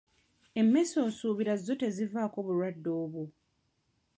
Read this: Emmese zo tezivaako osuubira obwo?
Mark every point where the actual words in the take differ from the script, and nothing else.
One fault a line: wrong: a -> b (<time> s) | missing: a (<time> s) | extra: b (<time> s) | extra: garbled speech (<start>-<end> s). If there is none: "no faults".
extra: osuubira (1.1 s)
wrong: osuubira -> bulwadde (2.5 s)